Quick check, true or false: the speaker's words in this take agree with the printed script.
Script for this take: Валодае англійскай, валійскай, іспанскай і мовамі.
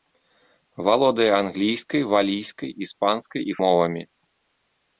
true